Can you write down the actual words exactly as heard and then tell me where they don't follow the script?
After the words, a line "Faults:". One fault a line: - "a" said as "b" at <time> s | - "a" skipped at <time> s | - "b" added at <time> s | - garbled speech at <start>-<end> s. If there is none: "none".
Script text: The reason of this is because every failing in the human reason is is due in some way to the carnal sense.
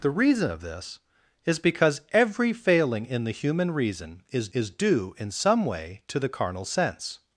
The reason of this is because every failing in the human reason is is due in some way to the carnal sense.
Faults:
none